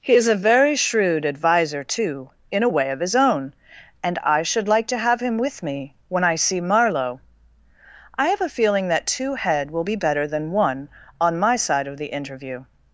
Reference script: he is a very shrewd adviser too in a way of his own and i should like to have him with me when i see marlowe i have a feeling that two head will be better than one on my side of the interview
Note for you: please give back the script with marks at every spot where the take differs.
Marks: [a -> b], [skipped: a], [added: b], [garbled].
he is a very shrewd adviser too in a way of his own and i should like to have him with me when i see marlowe i have a feeling that two head will be better than one on my side of the interview